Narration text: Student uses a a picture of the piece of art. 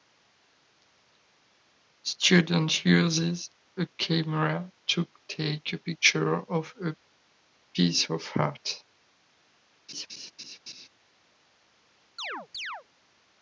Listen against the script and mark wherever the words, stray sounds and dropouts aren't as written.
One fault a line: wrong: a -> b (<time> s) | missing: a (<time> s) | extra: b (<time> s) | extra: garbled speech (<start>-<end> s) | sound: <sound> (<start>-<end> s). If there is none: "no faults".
extra: camera to take (4.0 s)
wrong: the -> a (6.8 s)
sound: laugh (9.9-10.9 s)
sound: chirp (12.2-12.8 s)